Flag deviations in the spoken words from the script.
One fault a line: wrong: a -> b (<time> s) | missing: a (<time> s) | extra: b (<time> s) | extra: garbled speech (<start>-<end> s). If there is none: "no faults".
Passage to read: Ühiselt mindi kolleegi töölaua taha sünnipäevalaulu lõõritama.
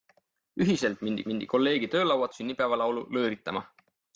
extra: mindi (1.3 s)
missing: taha (2.3 s)